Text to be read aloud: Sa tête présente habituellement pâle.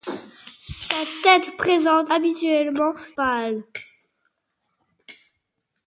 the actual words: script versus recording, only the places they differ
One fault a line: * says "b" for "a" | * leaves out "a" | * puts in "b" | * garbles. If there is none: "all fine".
all fine